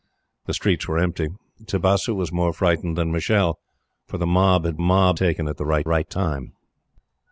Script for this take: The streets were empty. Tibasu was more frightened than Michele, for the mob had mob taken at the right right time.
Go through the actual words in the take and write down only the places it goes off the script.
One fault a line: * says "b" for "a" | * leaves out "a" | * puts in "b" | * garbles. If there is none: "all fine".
all fine